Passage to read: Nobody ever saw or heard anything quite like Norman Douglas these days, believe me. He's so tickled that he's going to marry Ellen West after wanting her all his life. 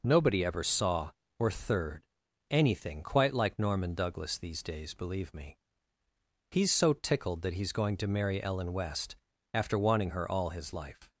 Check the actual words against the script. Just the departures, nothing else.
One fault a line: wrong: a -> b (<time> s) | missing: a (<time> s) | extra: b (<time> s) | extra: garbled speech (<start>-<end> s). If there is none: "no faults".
wrong: heard -> third (1.5 s)